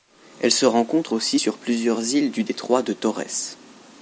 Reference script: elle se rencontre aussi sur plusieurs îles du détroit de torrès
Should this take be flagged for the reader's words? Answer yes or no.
no